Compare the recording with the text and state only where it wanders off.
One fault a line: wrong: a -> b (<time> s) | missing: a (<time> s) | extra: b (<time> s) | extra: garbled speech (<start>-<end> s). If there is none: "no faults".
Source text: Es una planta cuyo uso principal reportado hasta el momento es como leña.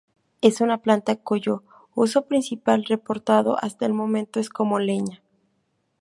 no faults